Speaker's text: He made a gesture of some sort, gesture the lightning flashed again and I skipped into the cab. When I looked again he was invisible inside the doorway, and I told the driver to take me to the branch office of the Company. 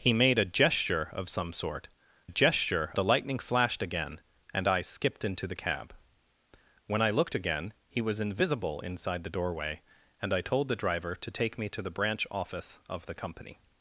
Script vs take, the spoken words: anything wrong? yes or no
no